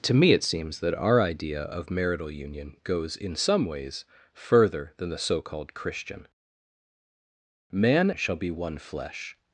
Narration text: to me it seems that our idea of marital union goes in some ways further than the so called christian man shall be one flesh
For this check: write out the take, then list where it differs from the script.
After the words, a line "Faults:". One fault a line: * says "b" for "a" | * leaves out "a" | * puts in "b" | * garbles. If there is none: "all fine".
to me it seems that our idea of marital union goes in some ways further than the so called christian man shall be one flesh
Faults:
all fine